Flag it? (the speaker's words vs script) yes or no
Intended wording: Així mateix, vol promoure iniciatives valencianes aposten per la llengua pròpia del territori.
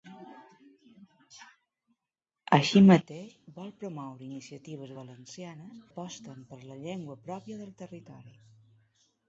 no